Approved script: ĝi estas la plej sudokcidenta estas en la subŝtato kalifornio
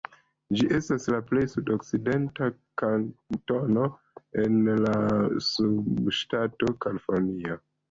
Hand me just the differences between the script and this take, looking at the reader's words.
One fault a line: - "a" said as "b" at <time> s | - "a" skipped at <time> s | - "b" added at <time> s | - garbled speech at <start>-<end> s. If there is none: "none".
- "estas" said as "kantono" at 2.8 s